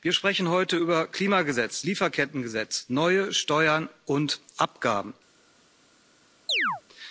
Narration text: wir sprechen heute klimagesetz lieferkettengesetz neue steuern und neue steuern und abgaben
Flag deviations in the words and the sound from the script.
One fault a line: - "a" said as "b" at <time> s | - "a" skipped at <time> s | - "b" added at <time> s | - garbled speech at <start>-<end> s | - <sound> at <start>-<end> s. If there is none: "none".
- "über" added at 0.8 s
- "neue steuern und" skipped at 4.4 s
- chirp at 6.5-6.8 s